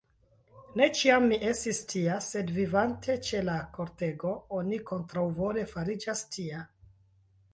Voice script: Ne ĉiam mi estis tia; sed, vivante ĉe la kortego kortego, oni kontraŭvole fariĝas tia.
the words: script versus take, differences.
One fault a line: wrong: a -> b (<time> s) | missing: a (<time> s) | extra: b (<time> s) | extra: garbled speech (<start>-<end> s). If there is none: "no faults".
missing: kortego (4.3 s)